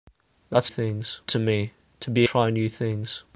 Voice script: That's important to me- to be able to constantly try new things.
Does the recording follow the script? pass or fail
fail